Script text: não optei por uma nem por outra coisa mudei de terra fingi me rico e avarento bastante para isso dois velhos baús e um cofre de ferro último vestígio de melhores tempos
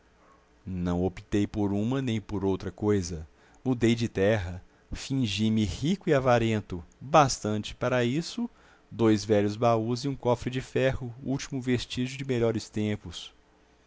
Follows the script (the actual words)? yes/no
yes